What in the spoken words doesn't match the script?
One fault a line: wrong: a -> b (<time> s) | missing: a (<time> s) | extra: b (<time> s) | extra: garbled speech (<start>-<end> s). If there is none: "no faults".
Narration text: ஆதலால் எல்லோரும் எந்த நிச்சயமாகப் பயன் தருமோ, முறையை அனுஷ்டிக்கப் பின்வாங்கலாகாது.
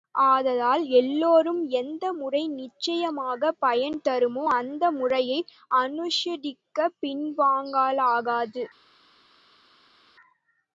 extra: முறை (2.1 s)
extra: அந்த (4.5 s)